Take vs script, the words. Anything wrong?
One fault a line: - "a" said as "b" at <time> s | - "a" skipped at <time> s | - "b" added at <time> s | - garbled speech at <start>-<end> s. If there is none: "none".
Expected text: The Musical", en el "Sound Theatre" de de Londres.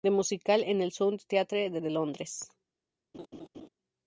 none